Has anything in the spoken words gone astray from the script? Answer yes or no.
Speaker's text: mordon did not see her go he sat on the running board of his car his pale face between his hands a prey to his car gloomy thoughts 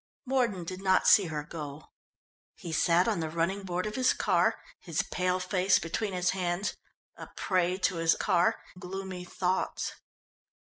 no